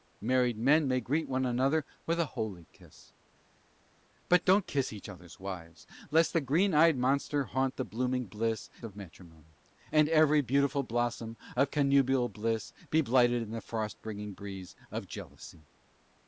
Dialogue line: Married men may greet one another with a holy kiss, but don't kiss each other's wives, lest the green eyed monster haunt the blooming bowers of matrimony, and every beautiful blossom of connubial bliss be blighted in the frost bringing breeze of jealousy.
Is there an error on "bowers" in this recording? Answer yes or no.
yes